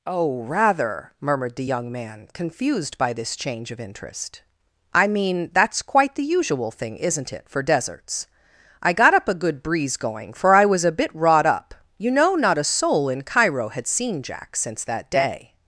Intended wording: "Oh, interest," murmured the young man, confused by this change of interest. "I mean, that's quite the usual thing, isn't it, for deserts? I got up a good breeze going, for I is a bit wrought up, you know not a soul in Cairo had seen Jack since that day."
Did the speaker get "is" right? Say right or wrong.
wrong